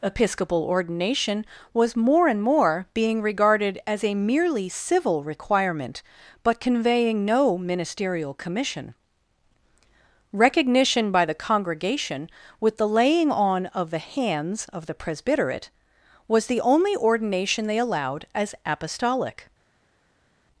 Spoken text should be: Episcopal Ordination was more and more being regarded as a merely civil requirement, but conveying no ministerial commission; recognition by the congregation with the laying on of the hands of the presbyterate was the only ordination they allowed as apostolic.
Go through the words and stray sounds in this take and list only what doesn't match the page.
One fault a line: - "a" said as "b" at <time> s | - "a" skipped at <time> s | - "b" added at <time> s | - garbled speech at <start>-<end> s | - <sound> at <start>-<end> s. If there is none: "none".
none